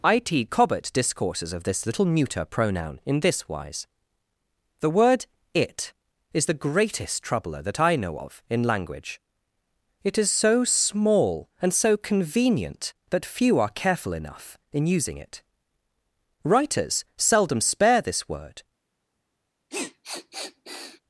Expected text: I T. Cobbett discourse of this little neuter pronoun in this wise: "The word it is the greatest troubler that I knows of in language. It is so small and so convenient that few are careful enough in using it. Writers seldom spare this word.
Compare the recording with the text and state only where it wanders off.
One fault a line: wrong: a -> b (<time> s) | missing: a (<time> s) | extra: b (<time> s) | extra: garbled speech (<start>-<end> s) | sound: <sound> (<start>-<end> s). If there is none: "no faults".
wrong: discourse -> discourses (0.9 s)
wrong: knows -> know (8.0 s)
sound: sniff (19.7-21.0 s)